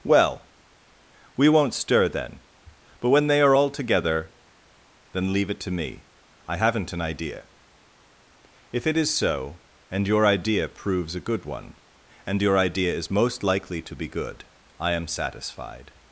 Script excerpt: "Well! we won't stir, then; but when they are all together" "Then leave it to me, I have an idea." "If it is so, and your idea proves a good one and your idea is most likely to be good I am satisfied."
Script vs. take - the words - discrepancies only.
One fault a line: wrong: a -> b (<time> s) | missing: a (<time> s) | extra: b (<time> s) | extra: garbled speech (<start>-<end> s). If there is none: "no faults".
wrong: have -> haven't (6.6 s)